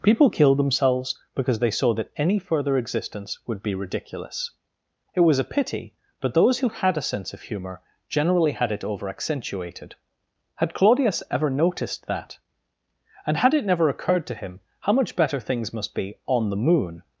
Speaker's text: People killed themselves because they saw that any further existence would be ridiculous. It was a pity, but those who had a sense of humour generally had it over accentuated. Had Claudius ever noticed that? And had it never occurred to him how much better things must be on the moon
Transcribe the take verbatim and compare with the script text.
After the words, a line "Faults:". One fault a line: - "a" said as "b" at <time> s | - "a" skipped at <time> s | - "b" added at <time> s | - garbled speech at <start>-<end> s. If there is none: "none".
People killed themselves because they saw that any further existence would be ridiculous. It was a pity, but those who had a sense of humour generally had it over accentuated. Had Claudius ever noticed that? And had it never occurred to him how much better things must be on the moon
Faults:
none